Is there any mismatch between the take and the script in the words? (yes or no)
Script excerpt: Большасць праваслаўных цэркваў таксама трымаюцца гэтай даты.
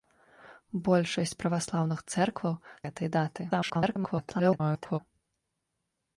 yes